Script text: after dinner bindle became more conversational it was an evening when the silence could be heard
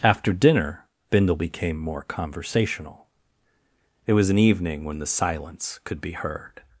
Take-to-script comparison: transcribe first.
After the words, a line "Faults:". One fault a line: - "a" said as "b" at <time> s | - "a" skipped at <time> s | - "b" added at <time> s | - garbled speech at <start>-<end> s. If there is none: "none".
after dinner bindle became more conversational it was an evening when the silence could be heard
Faults:
none